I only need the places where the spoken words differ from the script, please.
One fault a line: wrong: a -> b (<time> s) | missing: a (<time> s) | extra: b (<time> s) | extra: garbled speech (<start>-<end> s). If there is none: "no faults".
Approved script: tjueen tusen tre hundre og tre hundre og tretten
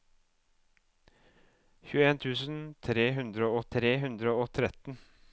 no faults